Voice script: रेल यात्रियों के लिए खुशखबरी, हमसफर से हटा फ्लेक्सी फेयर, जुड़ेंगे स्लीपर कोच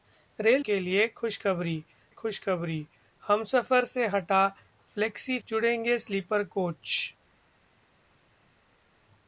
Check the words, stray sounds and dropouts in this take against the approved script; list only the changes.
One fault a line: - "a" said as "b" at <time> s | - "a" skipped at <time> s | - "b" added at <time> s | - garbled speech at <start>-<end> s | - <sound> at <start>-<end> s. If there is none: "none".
- "यात्रियों" skipped at 0.7 s
- "खुशखबरी" added at 2.1 s
- "फेयर" skipped at 5.4 s